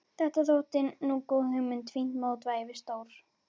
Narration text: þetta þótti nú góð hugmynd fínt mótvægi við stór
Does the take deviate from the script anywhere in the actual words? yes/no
no